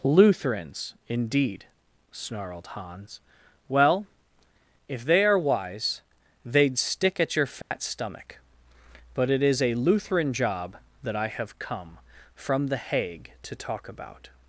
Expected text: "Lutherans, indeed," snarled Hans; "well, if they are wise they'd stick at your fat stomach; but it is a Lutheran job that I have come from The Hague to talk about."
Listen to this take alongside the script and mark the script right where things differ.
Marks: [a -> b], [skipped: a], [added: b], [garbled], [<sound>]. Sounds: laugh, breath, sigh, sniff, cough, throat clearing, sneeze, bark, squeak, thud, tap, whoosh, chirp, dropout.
"Lutherans, indeed," snarled Hans; "well, if they are wise they'd stick at your fat [dropout] stomach; but it is a Lutheran job that I have come from The Hague to talk about."